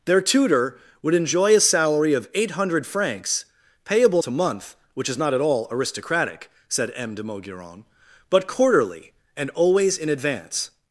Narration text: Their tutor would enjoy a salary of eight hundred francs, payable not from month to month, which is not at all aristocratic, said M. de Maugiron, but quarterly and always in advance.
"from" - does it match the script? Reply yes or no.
no